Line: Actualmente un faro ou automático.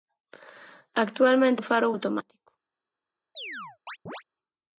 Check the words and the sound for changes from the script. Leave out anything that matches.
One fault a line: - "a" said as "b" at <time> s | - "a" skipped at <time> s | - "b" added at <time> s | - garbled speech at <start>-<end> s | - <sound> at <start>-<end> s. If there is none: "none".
- chirp at 3.3-4.2 s